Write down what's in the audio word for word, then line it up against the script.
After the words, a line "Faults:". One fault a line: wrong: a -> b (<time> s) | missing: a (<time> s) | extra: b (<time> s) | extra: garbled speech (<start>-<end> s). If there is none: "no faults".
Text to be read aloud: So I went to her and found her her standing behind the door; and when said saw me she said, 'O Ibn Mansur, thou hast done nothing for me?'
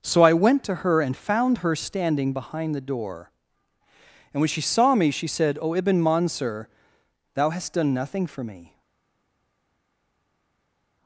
So I went to her and found her standing behind the door; and when she saw me she said, 'O Ibn Mansur, thou hast done nothing for me?'
Faults:
missing: her (1.8 s)
wrong: said -> she (4.5 s)